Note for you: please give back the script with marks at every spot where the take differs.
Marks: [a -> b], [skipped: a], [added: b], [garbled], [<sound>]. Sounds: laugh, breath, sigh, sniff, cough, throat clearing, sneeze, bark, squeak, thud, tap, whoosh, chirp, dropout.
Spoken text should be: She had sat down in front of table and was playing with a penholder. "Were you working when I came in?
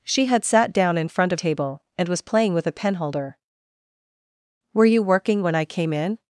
She had sat down in front of table and was playing with a penholder. "Were you working when I came in?